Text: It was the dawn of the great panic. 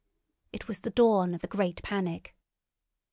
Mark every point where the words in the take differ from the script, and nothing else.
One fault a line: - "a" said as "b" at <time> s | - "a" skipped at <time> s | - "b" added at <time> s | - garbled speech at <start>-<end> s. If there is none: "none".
none